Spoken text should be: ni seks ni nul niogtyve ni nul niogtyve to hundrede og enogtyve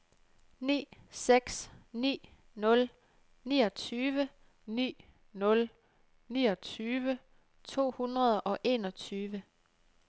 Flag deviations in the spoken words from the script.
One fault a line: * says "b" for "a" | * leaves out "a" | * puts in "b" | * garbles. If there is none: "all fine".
all fine